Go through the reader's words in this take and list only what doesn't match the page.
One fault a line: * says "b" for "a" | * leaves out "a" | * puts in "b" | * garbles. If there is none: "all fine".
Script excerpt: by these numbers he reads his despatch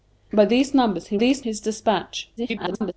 * says "these" for "reads"
* garbles